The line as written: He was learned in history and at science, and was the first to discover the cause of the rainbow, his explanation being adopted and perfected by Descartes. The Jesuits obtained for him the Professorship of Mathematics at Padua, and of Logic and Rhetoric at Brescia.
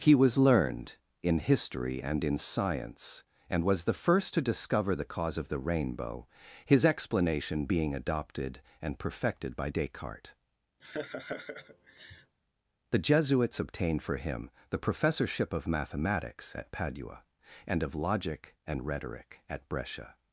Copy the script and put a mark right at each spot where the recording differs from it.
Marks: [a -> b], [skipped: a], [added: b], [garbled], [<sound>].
He was learned in history and [at -> in] science, and was the first to discover the cause of the rainbow, his explanation being adopted and perfected by Descartes. [laugh] The Jesuits obtained for him the Professorship of Mathematics at Padua, and of Logic and Rhetoric at Brescia.